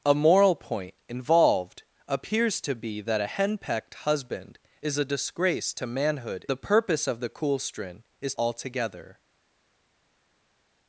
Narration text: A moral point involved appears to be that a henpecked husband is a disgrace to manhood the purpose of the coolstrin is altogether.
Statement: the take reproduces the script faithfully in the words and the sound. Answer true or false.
true